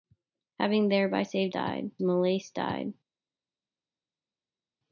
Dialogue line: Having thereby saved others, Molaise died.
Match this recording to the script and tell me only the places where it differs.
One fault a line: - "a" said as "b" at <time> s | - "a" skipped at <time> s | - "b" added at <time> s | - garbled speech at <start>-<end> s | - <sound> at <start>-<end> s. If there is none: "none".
- "others" said as "died" at 1.5 s